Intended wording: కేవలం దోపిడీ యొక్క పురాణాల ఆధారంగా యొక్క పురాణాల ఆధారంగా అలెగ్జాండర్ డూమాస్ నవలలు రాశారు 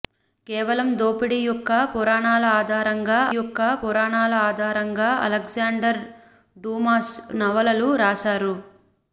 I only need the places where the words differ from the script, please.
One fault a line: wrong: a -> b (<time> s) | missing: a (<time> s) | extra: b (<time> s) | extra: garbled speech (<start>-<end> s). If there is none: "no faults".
no faults